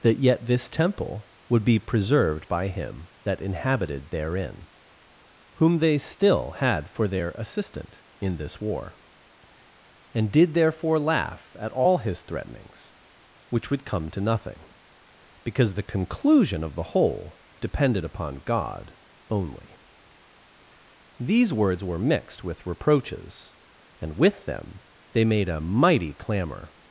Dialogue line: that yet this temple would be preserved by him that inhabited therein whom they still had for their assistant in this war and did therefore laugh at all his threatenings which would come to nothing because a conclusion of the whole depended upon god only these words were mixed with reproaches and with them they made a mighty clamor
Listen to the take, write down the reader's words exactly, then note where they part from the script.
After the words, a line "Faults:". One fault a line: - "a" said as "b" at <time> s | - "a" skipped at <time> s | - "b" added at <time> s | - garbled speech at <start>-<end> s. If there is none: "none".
that yet this temple would be preserved by him that inhabited therein whom they still had for their assistant in this war and did therefore laugh at all his threatenings which would come to nothing because the conclusion of the whole depended upon god only these words were mixed with reproaches and with them they made a mighty clamor
Faults:
- "a" said as "the" at 15.8 s